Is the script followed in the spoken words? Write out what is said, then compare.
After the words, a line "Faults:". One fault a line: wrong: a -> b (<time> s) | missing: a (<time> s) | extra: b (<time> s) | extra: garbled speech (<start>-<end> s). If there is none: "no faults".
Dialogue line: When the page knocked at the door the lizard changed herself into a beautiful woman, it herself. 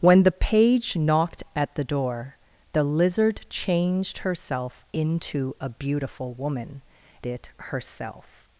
When the page knocked at the door the lizard changed herself into a beautiful woman, it herself.
Faults:
no faults